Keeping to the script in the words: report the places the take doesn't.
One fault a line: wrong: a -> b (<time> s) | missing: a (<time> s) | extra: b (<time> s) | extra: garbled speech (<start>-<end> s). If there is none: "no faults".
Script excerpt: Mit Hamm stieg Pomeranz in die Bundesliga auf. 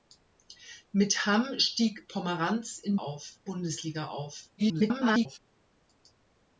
wrong: die -> auf (3.0 s)
extra: garbled speech (4.6-5.4 s)